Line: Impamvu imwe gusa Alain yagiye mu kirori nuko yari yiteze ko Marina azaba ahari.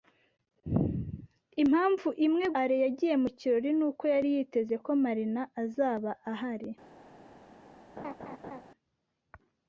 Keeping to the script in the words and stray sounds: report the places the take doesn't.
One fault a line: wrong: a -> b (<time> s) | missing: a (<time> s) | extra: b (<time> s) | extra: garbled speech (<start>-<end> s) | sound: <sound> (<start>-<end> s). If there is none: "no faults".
missing: gusa (2.5 s)
sound: laugh (8.0-8.6 s)